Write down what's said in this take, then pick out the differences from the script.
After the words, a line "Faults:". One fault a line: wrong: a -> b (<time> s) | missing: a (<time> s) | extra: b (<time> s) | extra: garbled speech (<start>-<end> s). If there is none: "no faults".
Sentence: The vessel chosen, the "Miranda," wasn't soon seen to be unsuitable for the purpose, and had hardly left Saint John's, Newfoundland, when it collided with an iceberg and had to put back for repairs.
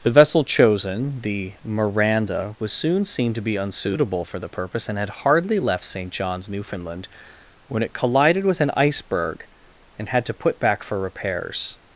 The vessel chosen, the "Miranda," was soon seen to be unsuitable for the purpose, and had hardly left Saint John's, Newfoundland, when it collided with an iceberg and had to put back for repairs.
Faults:
wrong: wasn't -> was (2.6 s)